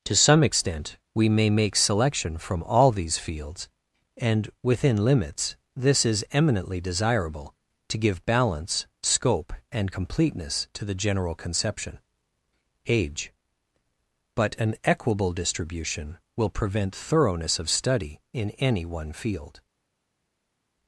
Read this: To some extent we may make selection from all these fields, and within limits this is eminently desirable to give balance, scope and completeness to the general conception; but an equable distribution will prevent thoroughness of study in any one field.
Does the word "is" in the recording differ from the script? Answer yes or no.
no